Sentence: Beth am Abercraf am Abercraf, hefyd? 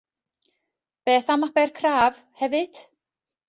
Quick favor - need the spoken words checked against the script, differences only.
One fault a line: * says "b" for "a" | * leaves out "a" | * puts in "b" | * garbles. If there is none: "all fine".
* leaves out "am Abercraf"